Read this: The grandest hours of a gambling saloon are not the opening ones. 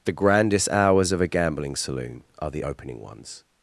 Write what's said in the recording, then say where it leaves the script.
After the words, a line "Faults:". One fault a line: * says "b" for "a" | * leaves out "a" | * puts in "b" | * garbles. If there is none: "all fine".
The grandest hours of a gambling saloon are the opening ones.
Faults:
* leaves out "not"